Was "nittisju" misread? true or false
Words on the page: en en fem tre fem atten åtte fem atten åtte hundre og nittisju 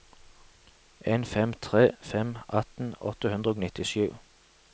false